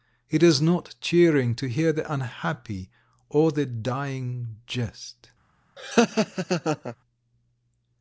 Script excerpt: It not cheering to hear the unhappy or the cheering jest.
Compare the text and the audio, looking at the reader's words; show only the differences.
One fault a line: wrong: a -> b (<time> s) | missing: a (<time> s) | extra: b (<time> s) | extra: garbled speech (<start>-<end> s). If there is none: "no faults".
extra: is (0.4 s)
wrong: cheering -> dying (3.7 s)